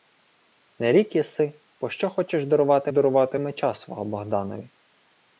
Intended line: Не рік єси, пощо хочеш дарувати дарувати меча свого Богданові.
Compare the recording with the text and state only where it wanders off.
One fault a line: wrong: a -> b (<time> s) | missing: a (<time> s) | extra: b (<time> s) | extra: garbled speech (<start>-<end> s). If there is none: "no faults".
no faults